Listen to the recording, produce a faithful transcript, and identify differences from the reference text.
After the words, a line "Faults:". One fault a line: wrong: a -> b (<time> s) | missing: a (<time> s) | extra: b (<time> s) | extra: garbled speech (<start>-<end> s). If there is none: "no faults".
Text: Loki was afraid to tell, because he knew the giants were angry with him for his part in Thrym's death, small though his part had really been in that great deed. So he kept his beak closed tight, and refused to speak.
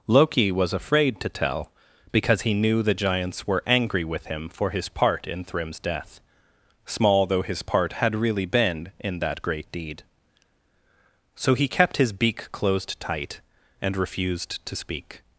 Loki was afraid to tell, because he knew the giants were angry with him for his part in Thrym's death, small though his part had really been in that great deed. So he kept his beak closed tight, and refused to speak.
Faults:
no faults